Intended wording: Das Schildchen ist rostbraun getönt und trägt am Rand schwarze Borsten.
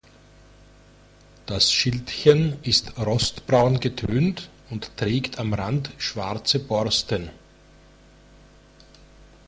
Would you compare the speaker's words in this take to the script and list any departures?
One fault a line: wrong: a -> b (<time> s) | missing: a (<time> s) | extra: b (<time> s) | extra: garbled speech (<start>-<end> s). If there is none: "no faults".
no faults